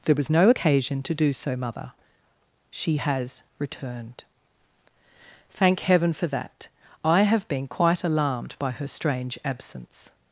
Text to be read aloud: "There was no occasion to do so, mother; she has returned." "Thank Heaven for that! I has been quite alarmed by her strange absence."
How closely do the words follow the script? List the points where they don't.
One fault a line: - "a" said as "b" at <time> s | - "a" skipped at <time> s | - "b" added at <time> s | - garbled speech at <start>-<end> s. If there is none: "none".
- "has" said as "have" at 7.2 s